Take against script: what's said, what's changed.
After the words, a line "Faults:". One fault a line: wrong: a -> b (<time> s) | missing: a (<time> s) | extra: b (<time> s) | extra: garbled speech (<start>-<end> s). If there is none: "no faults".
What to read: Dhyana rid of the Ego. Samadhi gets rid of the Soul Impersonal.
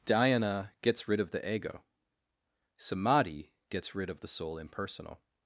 Dhyana gets rid of the Ego. Samadhi gets rid of the Soul Impersonal.
Faults:
extra: gets (0.8 s)